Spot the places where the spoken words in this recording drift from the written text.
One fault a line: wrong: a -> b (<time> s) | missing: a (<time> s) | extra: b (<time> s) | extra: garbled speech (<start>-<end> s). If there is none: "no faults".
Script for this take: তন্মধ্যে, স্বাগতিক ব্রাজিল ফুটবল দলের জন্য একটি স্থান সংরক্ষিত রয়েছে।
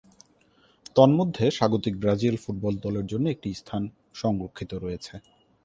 no faults